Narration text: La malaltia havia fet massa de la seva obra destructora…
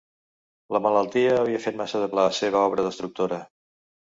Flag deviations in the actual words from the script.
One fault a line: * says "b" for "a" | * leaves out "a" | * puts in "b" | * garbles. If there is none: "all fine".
all fine